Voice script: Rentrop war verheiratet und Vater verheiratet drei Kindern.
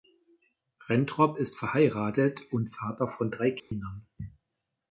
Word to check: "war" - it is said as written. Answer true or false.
false